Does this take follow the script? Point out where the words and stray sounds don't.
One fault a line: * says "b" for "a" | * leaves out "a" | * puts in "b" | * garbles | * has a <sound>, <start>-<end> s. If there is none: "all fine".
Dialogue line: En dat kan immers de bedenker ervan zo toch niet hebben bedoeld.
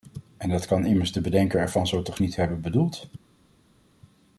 all fine